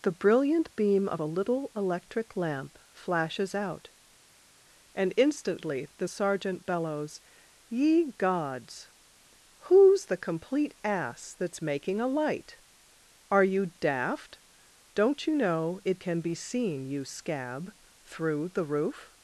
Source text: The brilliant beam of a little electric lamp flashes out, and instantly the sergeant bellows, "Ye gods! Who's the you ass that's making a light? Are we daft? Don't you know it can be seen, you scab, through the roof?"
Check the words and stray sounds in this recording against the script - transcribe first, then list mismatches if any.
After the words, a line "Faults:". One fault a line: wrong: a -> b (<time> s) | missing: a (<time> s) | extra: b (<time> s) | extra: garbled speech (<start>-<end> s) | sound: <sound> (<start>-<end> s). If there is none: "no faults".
The brilliant beam of a little electric lamp flashes out, and instantly the sergeant bellows, "Ye gods! Who's the complete ass that's making a light? Are you daft? Don't you know it can be seen, you scab, through the roof?"
Faults:
wrong: you -> complete (10.2 s)
wrong: we -> you (13.4 s)